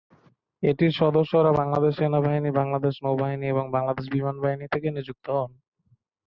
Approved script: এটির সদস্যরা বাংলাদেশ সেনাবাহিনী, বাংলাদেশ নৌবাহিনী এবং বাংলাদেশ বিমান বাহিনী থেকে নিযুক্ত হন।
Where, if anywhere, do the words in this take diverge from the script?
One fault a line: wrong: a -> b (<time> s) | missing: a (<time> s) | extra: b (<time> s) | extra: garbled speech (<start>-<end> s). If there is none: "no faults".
no faults